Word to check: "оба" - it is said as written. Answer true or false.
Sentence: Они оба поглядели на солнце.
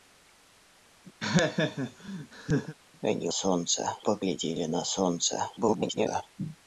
false